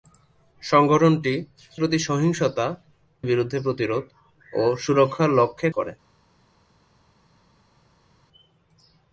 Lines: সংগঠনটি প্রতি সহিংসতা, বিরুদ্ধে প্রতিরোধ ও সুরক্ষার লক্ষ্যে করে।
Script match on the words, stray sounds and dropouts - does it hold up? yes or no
yes